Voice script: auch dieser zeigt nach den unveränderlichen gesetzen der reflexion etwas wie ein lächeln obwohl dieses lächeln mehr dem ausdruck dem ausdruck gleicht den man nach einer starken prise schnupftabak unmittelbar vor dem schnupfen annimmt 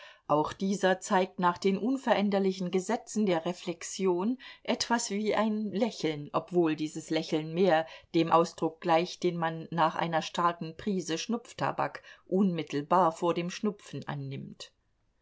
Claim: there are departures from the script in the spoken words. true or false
true